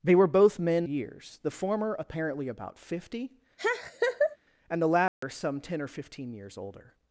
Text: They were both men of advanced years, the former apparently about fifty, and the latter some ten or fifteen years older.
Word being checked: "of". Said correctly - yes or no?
no